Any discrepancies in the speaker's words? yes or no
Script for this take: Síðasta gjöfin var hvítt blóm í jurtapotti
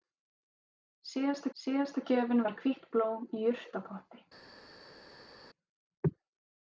yes